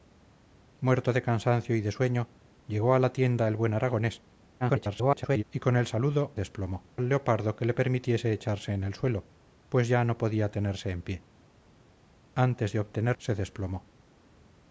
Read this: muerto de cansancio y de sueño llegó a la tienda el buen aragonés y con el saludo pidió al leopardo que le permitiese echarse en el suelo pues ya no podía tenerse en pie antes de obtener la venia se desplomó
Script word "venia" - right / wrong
wrong